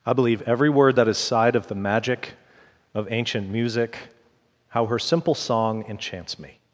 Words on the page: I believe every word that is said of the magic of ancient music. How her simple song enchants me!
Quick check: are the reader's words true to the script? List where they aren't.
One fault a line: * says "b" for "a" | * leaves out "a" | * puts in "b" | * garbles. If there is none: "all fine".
* says "sighed" for "said"